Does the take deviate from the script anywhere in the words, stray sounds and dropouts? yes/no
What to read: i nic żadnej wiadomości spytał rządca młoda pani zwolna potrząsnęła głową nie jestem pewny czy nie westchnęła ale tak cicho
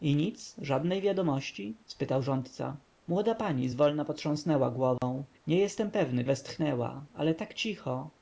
yes